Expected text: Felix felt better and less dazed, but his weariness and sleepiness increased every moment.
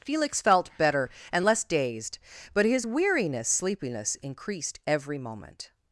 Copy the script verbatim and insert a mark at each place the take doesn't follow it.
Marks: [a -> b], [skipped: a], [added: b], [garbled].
Felix felt better and less dazed, but his weariness [skipped: and] sleepiness increased every moment.